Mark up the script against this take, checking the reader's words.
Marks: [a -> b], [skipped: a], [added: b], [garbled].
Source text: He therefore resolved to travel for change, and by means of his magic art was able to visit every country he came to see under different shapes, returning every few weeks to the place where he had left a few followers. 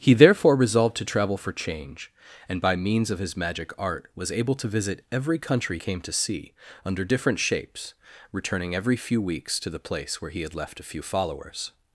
He therefore resolved to travel for change, and by means of his magic art was able to visit every country [skipped: he] came to see under different shapes, returning every few weeks to the place where he had left a few followers.